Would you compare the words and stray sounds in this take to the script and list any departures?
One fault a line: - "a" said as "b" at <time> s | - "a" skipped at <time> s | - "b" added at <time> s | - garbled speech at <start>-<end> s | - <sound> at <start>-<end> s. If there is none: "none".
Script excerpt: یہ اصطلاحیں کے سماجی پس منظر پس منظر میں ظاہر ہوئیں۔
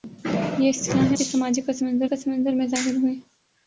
none